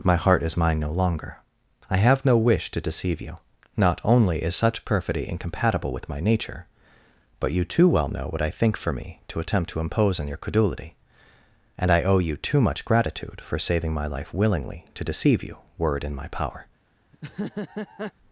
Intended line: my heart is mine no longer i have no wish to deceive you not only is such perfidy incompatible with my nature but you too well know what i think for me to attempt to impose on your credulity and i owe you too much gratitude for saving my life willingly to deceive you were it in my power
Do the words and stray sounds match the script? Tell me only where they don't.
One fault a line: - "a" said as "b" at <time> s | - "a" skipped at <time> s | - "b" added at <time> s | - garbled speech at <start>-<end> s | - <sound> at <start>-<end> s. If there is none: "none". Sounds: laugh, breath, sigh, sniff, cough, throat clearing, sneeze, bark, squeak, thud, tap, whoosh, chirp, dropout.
- laugh at 17.1-18.1 s